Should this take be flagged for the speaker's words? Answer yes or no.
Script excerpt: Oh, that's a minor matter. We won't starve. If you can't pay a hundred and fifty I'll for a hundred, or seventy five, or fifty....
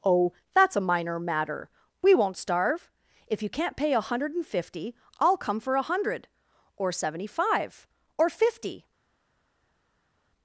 yes